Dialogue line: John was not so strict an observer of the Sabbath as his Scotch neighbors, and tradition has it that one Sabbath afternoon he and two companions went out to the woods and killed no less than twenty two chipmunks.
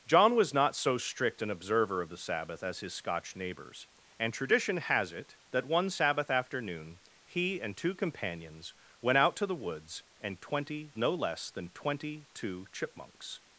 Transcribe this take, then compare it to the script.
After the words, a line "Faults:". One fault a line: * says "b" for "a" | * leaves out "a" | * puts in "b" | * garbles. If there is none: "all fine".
John was not so strict an observer of the Sabbath as his Scotch neighbors, and tradition has it that one Sabbath afternoon he and two companions went out to the woods and twenty no less than twenty two chipmunks.
Faults:
* says "twenty" for "killed"